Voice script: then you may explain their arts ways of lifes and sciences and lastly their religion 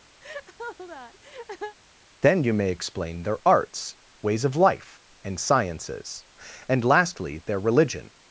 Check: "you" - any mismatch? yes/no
no